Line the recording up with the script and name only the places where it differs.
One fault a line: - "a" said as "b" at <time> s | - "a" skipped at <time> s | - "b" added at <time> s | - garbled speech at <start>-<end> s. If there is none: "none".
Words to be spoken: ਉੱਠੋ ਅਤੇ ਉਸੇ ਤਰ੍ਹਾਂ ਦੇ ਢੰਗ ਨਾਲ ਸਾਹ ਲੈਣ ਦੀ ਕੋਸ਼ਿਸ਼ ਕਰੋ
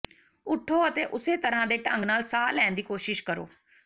none